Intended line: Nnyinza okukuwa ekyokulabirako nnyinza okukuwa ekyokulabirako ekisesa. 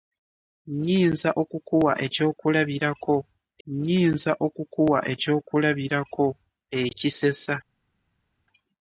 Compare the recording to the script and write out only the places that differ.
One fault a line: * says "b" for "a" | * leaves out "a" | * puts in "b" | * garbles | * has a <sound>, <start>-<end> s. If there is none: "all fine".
all fine